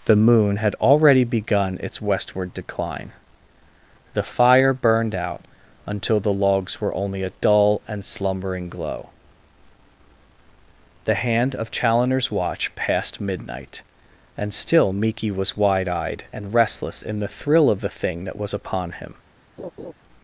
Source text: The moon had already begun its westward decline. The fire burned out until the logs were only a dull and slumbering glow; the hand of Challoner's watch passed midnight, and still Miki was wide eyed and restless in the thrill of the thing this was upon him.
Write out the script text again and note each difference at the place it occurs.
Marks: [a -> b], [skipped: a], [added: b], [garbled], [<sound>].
The moon had already begun its westward decline. The fire burned out until the logs were only a dull and slumbering glow; the hand of Challoner's watch passed midnight, and still Miki was wide eyed and restless in the thrill of the thing [this -> that] was upon him. [laugh]